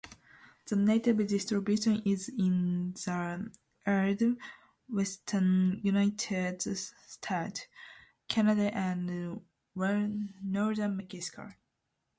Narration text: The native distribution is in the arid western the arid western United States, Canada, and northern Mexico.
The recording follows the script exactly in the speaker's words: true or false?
false